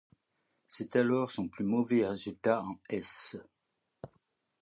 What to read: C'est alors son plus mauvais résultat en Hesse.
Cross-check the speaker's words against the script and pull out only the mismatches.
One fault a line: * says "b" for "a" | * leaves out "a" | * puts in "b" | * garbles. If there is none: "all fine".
all fine